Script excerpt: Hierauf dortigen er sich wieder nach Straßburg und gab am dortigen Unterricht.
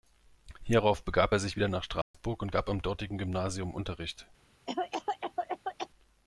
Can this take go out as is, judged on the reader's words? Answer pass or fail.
fail